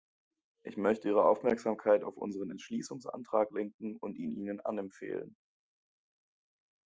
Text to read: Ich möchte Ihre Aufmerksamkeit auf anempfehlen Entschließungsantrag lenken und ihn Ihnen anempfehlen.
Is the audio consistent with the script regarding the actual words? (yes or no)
no